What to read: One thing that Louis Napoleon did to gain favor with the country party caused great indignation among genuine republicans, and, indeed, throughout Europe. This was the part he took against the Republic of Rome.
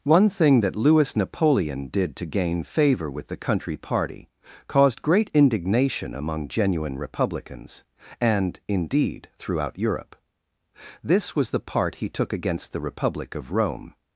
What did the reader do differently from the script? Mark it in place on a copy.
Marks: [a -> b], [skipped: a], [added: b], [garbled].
One thing that Louis Napoleon did to gain favor with the country party caused great indignation among genuine republicans, and, indeed, throughout Europe. This was the part he took against the Republic of Rome.